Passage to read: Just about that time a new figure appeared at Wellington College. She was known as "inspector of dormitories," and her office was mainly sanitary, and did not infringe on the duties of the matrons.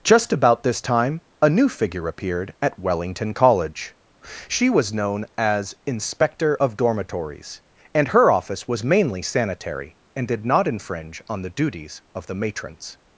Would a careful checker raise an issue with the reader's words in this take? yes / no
yes